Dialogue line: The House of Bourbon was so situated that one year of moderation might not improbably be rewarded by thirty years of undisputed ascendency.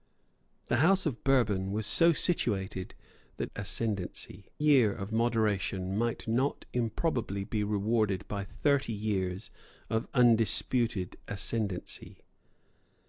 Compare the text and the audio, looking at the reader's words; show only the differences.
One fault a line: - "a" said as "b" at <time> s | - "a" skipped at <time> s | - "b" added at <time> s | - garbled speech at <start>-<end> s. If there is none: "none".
- "one" said as "ascendency" at 3.5 s